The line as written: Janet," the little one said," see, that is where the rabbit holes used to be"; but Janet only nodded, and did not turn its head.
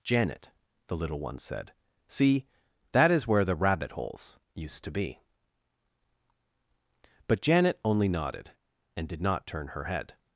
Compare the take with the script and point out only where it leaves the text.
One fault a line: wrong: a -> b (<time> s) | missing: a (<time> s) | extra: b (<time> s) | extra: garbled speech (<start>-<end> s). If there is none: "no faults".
wrong: its -> her (9.7 s)